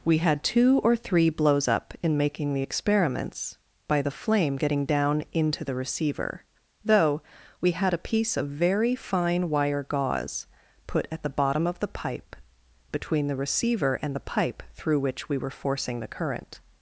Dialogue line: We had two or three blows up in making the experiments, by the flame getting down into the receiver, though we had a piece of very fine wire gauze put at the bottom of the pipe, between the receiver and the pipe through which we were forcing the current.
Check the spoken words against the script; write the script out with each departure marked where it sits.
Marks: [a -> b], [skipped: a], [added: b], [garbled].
We had two or three blows up in making the experiments, by the flame getting down into the receiver, though we had a piece of very fine wire gauze put at the bottom of the pipe, between the receiver and the pipe through which we were forcing the current.